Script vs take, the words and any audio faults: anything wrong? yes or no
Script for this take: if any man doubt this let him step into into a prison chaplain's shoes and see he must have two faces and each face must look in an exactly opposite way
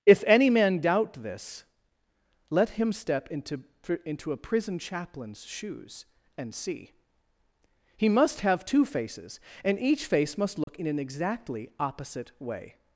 yes